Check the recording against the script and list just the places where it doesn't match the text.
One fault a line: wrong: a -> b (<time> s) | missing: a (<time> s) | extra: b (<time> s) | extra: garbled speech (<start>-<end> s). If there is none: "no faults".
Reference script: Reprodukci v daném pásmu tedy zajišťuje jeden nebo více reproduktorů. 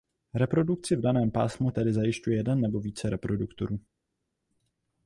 no faults